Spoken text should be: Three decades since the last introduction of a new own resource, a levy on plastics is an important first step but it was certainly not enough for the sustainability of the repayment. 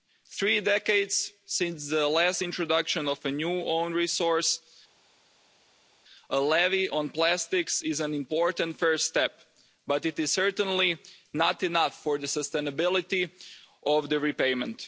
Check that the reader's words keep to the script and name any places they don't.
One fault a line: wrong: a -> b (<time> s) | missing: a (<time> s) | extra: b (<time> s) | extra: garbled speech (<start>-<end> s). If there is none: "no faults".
wrong: was -> is (10.2 s)